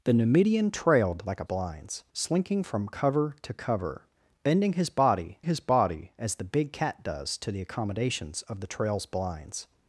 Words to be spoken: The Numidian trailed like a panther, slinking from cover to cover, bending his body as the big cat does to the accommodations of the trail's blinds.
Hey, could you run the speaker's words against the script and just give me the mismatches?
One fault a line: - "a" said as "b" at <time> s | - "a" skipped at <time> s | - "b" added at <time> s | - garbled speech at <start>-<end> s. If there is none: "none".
- "panther" said as "blinds" at 1.4 s
- "his body" added at 5.4 s